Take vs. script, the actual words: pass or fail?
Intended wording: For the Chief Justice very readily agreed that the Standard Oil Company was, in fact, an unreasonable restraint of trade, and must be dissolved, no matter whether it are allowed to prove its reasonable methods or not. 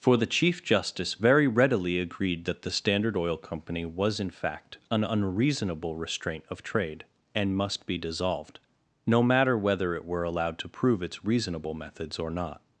fail